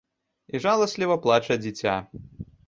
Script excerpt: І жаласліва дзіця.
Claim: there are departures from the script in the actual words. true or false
true